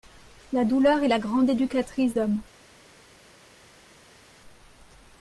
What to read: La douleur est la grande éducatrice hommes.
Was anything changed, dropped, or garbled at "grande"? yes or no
no